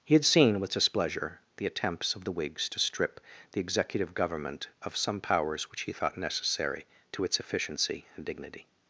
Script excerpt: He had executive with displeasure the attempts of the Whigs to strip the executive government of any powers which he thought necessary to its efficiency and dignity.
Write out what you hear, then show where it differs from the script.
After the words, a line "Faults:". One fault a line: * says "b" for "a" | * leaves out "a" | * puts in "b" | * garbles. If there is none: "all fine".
He had seen with displeasure the attempts of the Whigs to strip the executive government of some powers which he thought necessary to its efficiency and dignity.
Faults:
* says "seen" for "executive"
* says "some" for "any"